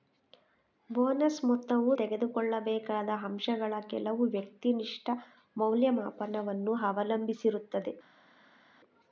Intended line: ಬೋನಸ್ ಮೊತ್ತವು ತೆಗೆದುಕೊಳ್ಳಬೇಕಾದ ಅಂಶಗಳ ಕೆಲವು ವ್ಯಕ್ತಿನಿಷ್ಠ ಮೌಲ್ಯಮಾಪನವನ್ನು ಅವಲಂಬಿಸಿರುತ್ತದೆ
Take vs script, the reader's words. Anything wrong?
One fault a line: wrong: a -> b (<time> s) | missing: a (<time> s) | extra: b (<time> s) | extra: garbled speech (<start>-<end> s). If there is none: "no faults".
no faults